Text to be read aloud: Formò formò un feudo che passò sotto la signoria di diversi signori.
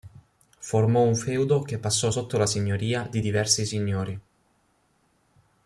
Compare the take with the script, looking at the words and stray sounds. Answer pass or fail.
fail